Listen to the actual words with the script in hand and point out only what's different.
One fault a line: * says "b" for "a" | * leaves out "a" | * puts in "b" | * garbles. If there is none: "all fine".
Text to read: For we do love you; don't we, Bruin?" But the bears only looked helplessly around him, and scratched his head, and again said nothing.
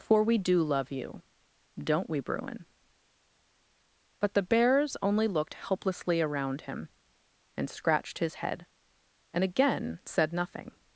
all fine